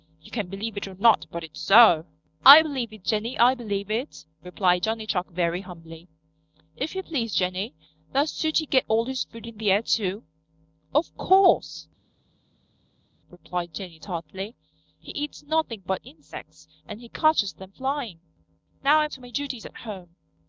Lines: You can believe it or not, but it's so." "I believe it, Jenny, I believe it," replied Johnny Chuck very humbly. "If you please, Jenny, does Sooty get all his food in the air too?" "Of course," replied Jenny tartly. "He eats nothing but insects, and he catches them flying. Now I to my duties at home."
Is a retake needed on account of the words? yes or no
no